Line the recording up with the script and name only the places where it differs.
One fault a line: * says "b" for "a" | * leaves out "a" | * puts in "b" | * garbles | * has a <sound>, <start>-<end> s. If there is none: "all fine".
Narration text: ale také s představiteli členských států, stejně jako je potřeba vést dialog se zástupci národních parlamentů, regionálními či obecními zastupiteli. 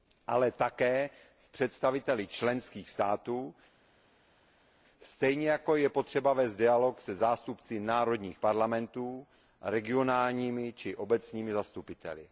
all fine